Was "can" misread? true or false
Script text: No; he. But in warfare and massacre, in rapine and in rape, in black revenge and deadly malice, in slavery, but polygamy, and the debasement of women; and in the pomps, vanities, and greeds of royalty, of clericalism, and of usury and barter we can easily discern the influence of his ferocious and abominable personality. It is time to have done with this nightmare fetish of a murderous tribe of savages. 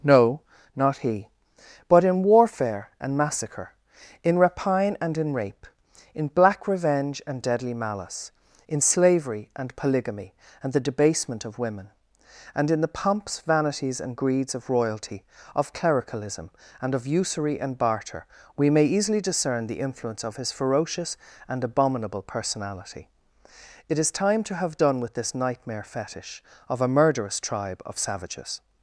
true